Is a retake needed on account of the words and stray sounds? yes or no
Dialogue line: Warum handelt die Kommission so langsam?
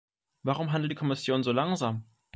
no